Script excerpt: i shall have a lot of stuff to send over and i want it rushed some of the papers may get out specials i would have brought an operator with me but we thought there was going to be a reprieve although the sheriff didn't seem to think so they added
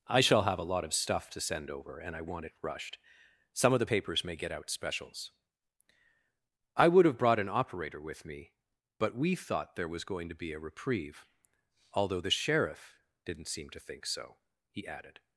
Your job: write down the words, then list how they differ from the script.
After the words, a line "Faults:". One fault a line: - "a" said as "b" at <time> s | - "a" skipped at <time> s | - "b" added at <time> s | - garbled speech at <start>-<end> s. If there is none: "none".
i shall have a lot of stuff to send over and i want it rushed some of the papers may get out specials i would have brought an operator with me but we thought there was going to be a reprieve although the sheriff didn't seem to think so he added
Faults:
- "they" said as "he" at 14.7 s